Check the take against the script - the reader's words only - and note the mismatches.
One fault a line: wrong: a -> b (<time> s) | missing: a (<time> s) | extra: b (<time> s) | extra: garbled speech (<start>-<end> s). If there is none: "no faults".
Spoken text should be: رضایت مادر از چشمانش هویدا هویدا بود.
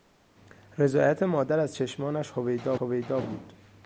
no faults